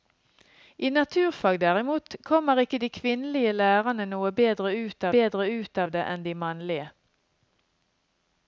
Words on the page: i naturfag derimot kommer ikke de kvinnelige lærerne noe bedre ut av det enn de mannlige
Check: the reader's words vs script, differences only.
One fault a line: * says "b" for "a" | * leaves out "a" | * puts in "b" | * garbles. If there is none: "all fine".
* puts in "bedre ut"